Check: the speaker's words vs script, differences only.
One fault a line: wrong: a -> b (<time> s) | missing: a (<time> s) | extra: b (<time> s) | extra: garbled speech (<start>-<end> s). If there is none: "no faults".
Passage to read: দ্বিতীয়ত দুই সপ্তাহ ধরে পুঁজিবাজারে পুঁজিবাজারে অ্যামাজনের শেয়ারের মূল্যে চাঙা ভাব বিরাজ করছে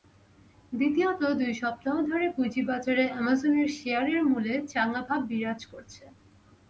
missing: পুঁজিবাজারে (3.0 s)